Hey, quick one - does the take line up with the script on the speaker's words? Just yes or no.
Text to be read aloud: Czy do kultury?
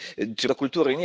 yes